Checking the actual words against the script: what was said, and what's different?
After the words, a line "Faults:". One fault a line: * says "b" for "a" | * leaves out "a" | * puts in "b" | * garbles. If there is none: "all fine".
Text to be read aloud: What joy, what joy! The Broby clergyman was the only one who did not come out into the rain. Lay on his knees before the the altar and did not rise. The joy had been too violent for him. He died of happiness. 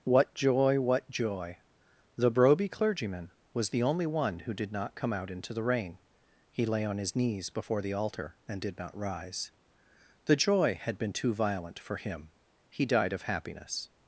What joy, what joy! The Broby clergyman was the only one who did not come out into the rain. He lay on his knees before the altar and did not rise. The joy had been too violent for him. He died of happiness.
Faults:
* puts in "He"
* leaves out "the"